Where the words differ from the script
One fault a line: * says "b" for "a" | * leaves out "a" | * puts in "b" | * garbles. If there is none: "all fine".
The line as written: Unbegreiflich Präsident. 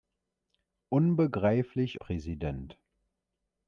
all fine